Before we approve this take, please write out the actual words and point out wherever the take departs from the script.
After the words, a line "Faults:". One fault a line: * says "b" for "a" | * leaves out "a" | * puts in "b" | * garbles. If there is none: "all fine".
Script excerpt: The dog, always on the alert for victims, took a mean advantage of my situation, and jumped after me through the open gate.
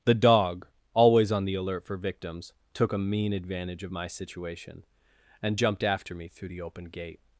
The dog, always on the alert for victims, took a mean advantage of my situation, and jumped after me through the open gate.
Faults:
all fine